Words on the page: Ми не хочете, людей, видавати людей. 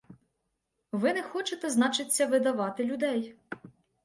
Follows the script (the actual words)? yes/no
no